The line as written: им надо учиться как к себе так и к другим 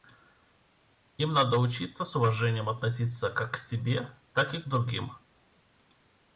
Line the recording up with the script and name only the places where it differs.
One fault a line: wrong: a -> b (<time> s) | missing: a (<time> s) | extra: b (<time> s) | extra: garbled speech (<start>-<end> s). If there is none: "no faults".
extra: с уважением относиться (2.0 s)